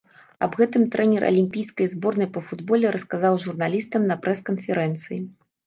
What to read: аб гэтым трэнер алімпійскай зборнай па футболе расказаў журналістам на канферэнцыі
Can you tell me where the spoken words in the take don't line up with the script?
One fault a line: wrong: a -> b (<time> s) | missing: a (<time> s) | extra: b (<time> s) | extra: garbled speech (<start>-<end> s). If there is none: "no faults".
extra: прэс (4.3 s)